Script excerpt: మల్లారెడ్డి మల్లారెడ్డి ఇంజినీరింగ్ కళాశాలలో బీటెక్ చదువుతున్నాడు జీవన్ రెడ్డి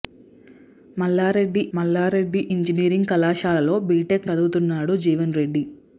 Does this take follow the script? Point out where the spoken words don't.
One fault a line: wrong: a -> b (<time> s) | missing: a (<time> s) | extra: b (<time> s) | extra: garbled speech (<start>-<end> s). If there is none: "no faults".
no faults